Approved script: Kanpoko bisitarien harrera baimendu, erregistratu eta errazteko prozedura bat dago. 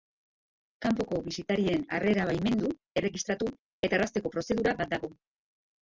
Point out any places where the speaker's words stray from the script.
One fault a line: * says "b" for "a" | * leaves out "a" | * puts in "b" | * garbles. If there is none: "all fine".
all fine